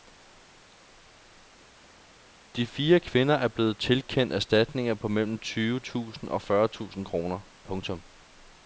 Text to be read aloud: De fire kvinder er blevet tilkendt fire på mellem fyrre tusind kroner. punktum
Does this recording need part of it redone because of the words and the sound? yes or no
yes